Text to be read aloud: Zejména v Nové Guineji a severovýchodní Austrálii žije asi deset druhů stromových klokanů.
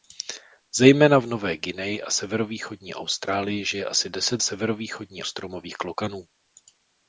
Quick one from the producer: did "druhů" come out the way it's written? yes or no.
no